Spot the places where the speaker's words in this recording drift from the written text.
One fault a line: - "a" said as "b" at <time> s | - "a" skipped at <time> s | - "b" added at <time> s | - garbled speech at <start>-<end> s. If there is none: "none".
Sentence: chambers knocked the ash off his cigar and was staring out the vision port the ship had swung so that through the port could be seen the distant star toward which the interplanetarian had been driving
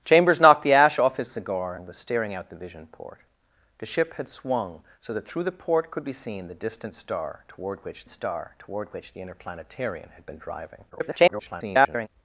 - "star toward which" added at 8.1 s
- garbled speech at 10.9-12.1 s